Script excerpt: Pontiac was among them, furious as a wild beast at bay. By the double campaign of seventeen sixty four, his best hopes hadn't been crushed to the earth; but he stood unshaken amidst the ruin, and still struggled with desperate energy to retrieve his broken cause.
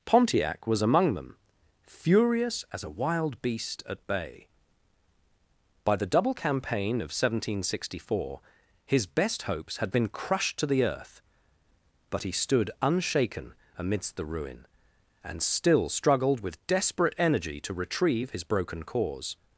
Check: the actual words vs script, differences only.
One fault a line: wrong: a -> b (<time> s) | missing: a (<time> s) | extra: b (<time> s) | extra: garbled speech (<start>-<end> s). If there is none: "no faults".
wrong: hadn't -> had (9.8 s)